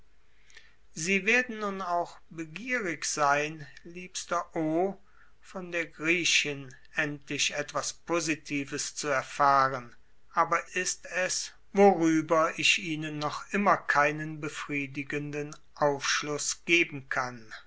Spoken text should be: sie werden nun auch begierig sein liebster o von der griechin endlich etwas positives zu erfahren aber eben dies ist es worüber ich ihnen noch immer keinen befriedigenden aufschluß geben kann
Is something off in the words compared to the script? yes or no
yes